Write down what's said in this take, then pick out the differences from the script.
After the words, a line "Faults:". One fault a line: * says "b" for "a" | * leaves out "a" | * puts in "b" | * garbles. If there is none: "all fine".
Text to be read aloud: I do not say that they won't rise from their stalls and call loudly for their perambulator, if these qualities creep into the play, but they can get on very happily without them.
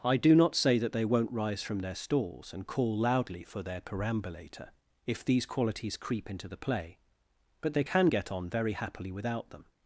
I do not say that they won't rise from their stalls and call loudly for their perambulator, if these qualities creep into the play, but they can get on very happily without them.
Faults:
all fine